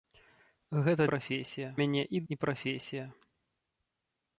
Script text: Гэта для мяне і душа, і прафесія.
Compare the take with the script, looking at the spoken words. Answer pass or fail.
fail